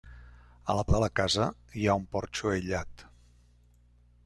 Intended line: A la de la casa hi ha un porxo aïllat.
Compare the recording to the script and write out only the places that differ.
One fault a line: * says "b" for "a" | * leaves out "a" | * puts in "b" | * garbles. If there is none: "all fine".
all fine